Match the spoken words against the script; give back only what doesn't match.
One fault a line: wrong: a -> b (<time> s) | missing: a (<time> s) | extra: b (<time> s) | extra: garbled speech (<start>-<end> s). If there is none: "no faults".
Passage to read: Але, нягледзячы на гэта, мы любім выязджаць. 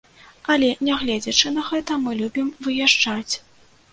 no faults